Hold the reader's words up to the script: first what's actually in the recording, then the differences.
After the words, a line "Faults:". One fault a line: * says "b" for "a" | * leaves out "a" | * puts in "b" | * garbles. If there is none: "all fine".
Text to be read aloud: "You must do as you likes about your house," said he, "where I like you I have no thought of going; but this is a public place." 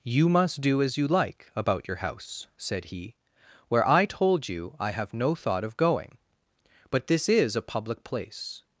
"You must do as you like about your house," said he, "where I told you I have no thought of going; but this is a public place."
Faults:
* says "like" for "likes"
* says "told" for "like"